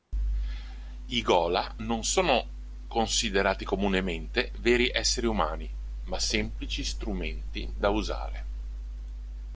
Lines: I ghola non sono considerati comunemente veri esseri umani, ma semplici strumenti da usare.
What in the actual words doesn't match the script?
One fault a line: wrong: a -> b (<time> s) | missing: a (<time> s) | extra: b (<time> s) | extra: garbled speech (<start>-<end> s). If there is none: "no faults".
no faults